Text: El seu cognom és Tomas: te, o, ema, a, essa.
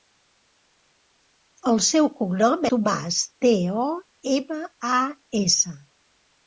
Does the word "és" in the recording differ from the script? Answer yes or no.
yes